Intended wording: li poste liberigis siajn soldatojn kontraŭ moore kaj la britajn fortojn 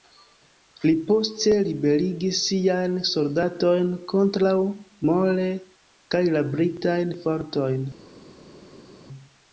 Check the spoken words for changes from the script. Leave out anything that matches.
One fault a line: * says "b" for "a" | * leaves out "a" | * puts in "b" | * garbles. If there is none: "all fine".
all fine